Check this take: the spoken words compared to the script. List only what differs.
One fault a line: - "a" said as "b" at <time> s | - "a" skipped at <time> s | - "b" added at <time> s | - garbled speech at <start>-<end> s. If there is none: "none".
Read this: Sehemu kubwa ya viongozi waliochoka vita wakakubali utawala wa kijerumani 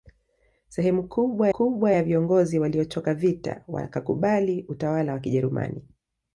- "kubwa" added at 1.5 s